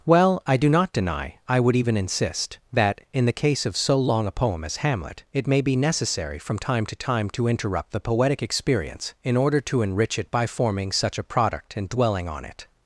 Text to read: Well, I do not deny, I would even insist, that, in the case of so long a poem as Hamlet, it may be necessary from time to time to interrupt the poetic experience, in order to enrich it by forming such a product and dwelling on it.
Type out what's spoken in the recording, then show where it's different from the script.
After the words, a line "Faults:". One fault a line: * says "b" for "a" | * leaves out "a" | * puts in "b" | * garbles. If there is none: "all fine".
Well, I do not deny, I would even insist, that, in the case of so long a poem as Hamlet, it may be necessary from time to time to interrupt the poetic experience, in order to enrich it by forming such a product and dwelling on it.
Faults:
all fine